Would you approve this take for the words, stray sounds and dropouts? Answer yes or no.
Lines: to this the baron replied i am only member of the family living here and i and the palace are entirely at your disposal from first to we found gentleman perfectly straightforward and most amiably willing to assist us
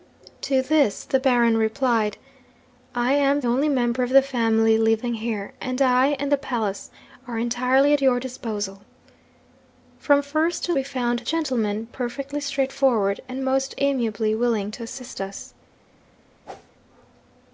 no